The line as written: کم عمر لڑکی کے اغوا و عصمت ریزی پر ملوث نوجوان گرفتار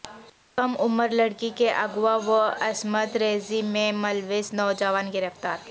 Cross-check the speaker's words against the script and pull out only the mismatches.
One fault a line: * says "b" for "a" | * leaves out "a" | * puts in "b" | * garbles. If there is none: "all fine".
* says "میں" for "پر"